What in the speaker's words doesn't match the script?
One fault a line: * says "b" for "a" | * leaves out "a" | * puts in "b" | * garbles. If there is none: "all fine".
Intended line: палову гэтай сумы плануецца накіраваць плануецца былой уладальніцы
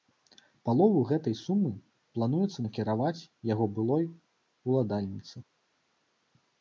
* says "яго" for "плануецца"